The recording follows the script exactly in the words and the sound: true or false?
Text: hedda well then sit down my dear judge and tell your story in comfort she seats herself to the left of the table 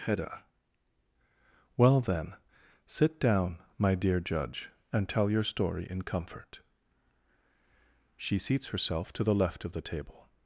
true